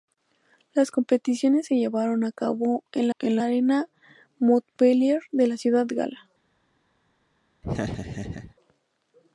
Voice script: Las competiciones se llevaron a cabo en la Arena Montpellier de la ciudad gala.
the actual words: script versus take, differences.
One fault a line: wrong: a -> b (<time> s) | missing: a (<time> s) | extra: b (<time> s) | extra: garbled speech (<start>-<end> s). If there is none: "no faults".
extra: en (3.2 s)